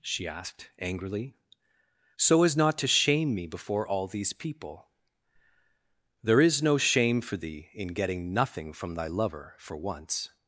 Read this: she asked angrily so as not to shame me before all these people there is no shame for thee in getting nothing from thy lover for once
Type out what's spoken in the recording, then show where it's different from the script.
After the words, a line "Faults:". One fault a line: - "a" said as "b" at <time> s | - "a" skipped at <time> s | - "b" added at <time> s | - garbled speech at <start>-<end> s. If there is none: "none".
she asked angrily so as not to shame me before all these people there is no shame for thee in getting nothing from thy lover for once
Faults:
none